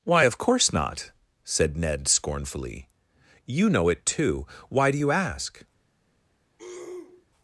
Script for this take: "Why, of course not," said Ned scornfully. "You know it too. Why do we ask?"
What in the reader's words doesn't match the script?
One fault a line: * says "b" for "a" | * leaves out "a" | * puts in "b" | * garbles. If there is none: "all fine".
* says "you" for "we"